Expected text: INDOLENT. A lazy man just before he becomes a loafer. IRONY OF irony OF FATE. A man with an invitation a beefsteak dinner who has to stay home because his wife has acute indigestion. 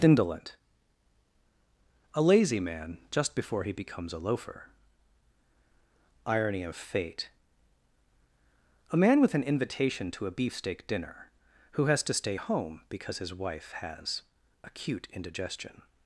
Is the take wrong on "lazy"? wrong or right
right